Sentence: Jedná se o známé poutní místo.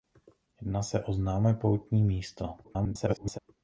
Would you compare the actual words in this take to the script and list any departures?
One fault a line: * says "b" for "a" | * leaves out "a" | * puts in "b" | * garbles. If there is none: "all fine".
* garbles